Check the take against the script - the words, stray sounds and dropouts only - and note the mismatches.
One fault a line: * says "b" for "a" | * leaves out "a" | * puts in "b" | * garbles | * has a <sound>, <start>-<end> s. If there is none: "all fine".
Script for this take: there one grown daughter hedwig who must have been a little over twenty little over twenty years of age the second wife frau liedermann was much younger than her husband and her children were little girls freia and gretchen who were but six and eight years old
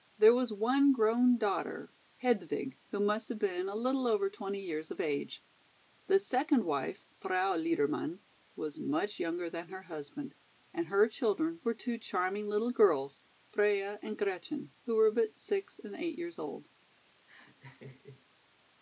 * puts in "was"
* leaves out "little over twenty"
* puts in "two charming"
* has a laugh, 17.3-18.2 s